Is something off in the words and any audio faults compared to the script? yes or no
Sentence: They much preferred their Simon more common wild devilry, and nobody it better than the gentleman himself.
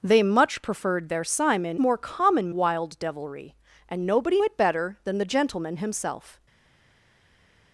no